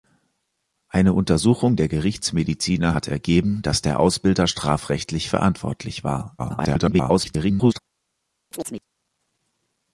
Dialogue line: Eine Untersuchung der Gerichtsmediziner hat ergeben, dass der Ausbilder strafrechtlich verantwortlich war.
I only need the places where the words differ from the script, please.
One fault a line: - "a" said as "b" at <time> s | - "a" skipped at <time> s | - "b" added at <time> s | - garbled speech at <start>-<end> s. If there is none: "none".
- garbled speech at 6.4-7.8 s